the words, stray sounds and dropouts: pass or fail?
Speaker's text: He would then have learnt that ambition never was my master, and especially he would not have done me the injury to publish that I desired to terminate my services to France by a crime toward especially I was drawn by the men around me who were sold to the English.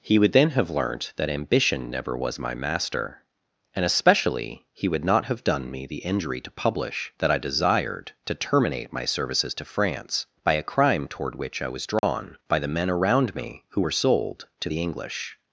fail